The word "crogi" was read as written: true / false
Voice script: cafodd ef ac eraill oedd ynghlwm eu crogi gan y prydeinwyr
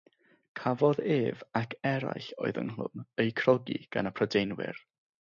true